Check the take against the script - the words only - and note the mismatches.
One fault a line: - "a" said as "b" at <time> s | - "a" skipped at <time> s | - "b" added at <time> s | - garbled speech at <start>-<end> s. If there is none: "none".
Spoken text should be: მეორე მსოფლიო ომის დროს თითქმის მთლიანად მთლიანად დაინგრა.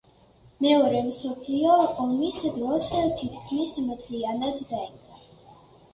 - "მთლიანად" skipped at 4.7 s